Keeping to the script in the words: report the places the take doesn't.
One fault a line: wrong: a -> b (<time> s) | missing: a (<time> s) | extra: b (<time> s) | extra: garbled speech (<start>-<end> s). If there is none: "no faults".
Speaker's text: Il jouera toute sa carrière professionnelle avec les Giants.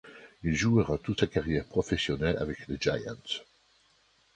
no faults